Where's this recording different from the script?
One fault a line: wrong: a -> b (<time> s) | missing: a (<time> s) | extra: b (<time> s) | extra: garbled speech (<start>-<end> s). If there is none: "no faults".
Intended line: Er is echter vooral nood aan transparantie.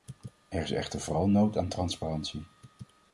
no faults